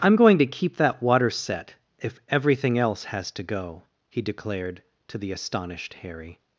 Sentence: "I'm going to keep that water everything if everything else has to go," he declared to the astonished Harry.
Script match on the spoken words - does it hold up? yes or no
no